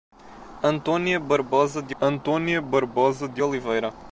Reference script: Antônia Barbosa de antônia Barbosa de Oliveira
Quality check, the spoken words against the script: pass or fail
pass